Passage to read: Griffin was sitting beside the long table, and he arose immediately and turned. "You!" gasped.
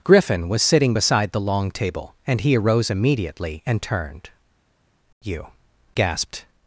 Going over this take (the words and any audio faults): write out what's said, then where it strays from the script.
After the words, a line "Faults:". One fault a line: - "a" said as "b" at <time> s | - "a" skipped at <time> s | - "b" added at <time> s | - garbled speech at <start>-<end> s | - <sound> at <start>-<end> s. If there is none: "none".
Griffin was sitting beside the long table, and he arose immediately and turned. "You!" gasped.
Faults:
none